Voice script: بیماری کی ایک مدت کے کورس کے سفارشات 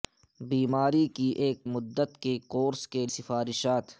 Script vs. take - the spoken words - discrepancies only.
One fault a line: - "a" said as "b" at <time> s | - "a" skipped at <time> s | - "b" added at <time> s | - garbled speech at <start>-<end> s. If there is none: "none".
none